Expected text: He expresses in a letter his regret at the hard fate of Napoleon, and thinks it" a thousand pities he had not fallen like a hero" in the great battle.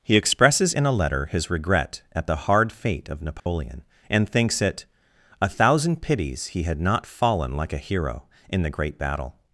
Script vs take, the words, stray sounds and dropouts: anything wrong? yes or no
yes